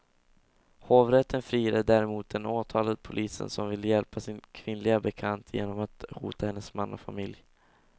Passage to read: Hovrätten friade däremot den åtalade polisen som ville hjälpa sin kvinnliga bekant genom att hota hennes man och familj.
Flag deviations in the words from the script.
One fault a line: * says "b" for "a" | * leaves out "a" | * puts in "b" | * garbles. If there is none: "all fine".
all fine